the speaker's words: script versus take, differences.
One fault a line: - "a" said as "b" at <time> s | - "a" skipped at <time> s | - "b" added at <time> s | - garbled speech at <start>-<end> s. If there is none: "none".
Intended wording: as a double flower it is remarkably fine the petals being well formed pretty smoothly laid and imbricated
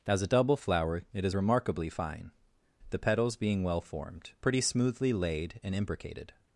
none